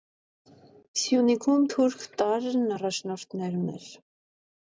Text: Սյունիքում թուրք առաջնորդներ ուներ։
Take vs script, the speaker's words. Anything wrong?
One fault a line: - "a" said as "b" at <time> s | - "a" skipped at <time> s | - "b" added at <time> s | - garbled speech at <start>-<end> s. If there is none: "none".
- "տարրն" added at 2.2 s